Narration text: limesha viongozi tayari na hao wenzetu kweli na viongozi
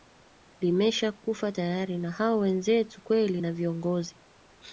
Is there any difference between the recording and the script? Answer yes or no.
yes